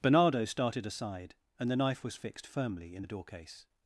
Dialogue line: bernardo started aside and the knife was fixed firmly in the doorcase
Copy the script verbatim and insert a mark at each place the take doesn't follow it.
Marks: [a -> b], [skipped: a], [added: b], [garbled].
bernardo started aside and the knife was fixed firmly in the doorcase